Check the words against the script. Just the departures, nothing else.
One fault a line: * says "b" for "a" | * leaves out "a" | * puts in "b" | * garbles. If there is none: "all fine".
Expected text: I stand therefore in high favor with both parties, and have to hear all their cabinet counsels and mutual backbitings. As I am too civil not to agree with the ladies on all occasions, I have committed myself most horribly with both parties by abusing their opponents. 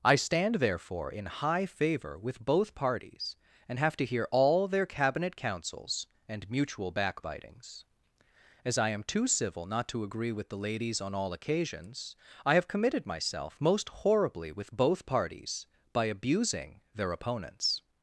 all fine